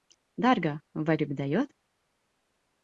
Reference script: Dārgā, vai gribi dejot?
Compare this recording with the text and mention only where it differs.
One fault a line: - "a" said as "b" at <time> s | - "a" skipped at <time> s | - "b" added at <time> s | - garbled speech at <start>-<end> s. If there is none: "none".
none